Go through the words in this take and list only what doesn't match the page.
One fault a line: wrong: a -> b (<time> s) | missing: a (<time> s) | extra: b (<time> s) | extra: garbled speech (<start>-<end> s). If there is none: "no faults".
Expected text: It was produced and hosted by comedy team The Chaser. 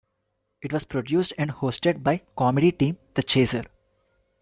no faults